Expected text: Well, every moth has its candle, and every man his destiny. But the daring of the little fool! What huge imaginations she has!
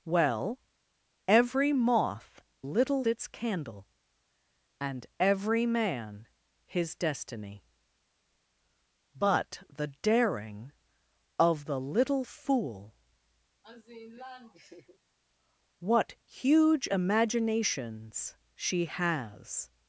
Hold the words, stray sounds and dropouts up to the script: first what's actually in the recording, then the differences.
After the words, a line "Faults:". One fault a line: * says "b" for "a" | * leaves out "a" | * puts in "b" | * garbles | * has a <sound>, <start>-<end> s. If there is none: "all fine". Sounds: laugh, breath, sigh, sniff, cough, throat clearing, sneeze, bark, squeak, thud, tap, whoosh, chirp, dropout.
Well, every moth little its candle, and every man his destiny. But the daring of the little fool! What huge imaginations she has!
Faults:
* says "little" for "has"
* has a laugh, 13.6-15.0 s